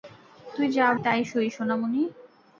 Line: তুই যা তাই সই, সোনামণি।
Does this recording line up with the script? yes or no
yes